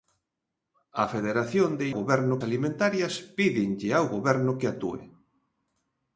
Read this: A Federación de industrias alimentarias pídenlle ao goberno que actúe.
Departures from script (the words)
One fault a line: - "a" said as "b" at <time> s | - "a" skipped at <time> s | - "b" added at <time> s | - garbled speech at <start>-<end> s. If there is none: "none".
- "industrias" said as "goberno" at 2.0 s